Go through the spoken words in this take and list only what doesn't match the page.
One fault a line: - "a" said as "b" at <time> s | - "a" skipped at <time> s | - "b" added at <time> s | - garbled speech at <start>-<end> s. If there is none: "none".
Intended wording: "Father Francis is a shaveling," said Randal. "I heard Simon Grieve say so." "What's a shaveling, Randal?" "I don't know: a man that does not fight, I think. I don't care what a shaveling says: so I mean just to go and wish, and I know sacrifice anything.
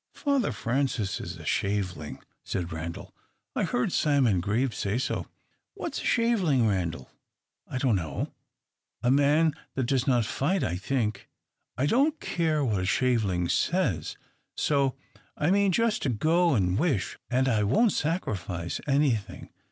- "know" said as "won't" at 17.6 s